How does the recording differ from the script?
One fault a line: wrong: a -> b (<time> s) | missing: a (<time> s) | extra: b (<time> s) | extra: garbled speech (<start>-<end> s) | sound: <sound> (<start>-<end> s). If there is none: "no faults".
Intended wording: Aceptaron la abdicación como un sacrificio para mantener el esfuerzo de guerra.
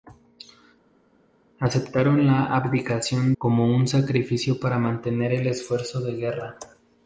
no faults